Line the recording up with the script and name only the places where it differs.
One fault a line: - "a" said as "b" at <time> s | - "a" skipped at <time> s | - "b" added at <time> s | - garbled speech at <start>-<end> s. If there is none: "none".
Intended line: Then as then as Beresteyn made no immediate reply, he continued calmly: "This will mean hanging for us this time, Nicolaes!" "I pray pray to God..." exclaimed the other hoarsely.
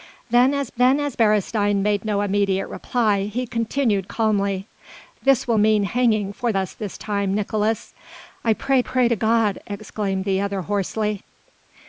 none